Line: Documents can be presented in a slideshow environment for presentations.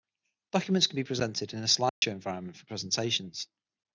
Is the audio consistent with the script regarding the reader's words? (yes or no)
yes